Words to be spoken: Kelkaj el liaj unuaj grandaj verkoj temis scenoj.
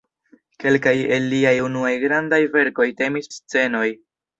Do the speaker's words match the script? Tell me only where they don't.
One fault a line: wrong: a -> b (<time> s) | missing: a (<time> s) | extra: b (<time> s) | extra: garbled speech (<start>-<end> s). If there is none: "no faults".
no faults